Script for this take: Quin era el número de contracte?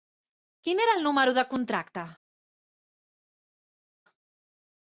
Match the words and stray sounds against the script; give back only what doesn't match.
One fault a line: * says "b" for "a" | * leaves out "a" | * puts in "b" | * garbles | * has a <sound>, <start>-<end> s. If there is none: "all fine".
all fine